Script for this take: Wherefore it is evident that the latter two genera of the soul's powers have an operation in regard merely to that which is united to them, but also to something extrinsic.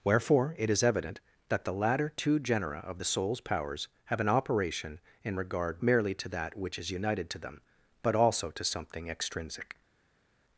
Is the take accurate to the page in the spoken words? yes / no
yes